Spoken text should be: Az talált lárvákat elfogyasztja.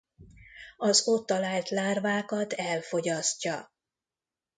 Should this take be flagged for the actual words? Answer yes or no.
yes